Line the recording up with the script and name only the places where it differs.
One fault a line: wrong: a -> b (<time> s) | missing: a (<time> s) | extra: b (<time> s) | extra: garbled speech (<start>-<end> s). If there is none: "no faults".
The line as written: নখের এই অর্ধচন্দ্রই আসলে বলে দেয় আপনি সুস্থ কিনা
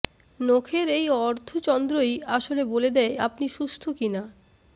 no faults